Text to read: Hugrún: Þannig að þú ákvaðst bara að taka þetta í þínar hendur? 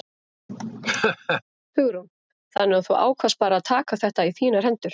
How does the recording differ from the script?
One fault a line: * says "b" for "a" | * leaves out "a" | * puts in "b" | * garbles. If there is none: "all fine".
all fine